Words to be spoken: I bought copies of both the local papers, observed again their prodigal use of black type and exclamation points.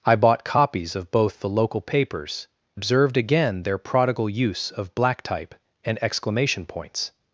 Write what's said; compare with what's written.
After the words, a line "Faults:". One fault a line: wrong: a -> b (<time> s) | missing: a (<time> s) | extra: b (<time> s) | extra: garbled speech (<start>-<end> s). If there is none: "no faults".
I bought copies of both the local papers, observed again their prodigal use of black type and exclamation points.
Faults:
no faults